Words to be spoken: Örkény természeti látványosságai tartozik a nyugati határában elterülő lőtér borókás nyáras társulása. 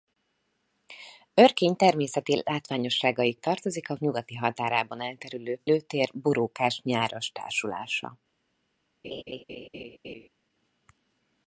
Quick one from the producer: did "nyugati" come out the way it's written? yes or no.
yes